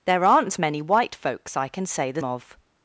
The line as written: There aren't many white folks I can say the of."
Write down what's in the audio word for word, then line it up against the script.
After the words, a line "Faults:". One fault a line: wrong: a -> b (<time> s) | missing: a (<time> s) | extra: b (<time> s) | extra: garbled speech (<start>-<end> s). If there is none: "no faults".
There aren't many white folks I can say the of."
Faults:
no faults